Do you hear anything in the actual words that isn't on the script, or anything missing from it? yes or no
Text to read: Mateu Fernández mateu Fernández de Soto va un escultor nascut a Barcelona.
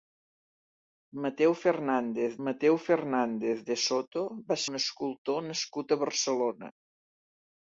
no